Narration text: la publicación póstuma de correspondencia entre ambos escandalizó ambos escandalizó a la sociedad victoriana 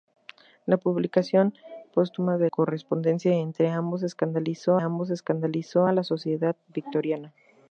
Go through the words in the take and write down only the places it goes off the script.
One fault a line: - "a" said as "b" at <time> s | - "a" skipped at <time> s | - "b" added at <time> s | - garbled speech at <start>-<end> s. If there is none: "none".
none